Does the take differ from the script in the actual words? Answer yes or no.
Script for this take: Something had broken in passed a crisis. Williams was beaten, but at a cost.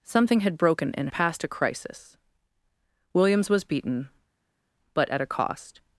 no